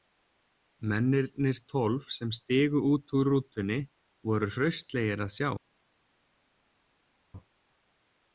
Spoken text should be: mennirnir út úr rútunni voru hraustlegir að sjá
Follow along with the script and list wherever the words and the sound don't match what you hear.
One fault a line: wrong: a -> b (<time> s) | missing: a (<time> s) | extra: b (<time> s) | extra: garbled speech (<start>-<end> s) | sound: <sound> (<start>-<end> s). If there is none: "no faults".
extra: tólf sem stigu (1.7 s)